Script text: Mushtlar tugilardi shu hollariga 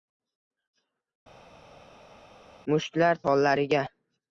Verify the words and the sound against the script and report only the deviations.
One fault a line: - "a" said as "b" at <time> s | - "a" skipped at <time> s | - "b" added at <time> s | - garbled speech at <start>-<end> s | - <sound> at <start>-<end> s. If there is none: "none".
- "tugilardi shu" skipped at 3.2 s